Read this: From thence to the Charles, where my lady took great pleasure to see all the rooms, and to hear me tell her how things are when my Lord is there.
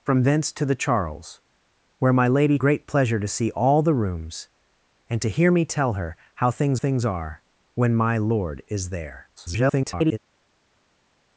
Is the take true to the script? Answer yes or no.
no